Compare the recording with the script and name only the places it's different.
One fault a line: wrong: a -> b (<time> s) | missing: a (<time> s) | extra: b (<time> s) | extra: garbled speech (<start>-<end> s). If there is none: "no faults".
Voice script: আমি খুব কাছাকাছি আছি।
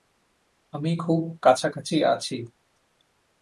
no faults